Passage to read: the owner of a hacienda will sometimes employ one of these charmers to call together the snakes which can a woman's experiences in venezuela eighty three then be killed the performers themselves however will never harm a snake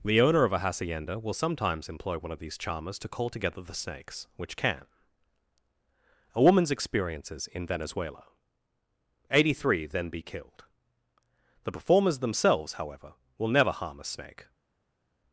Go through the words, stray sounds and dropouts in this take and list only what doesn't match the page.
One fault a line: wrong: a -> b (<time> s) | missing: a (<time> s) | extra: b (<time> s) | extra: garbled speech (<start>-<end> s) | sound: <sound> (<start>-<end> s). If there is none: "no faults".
no faults